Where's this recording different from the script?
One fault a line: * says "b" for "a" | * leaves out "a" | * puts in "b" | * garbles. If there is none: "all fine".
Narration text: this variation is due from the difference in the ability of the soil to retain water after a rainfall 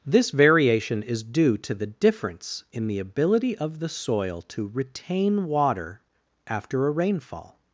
* says "to" for "from"